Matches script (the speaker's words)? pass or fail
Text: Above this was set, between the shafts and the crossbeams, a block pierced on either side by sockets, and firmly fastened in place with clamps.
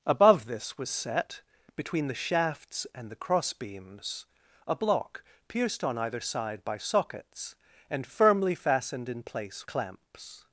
fail